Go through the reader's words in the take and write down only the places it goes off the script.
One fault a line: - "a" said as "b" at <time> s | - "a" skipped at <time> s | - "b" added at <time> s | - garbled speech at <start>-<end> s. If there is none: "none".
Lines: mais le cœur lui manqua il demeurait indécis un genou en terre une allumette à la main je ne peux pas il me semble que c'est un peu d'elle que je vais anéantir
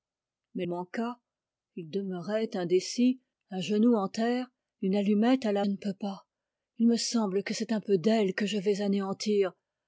- "le cœur lui" skipped at 0.7 s
- "main je" skipped at 5.6 s